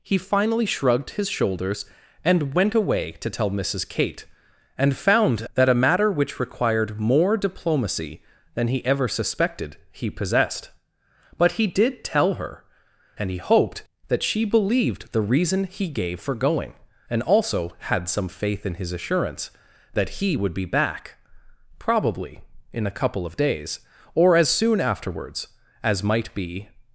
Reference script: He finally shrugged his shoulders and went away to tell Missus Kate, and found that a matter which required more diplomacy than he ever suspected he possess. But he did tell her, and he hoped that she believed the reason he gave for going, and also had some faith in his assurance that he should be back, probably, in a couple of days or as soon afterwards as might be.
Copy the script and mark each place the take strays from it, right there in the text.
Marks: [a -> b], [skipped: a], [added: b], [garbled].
He finally shrugged his shoulders and went away to tell Missus Kate, and found that a matter which required more diplomacy than he ever suspected he [possess. -> possessed] But he did tell her, and he hoped that she believed the reason he gave for going, and also had some faith in his assurance that he [should -> would] be back, probably, in a couple of days or as soon afterwards as might be.